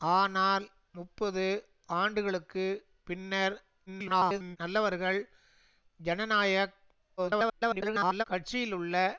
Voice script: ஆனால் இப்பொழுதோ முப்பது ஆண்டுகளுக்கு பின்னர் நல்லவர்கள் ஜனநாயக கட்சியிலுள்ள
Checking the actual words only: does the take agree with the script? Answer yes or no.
no